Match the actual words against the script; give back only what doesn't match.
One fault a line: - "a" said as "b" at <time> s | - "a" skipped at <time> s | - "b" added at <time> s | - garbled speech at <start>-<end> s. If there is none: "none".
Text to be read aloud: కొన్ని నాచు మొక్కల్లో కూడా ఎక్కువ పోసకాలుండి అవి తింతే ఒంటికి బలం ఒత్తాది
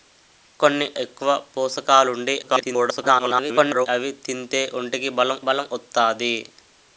- "నాచు మొక్కల్లో కూడా" skipped at 0.8 s
- garbled speech at 2.4-3.9 s
- "బలం" added at 5.5 s